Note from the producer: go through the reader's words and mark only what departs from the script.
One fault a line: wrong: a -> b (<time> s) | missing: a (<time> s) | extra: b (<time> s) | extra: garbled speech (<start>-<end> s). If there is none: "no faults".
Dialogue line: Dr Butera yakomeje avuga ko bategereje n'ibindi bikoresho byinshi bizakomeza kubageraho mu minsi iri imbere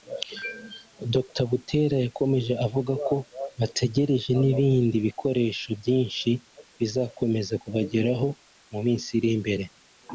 no faults